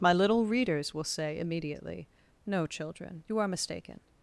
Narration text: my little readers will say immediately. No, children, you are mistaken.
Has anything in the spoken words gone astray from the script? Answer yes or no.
no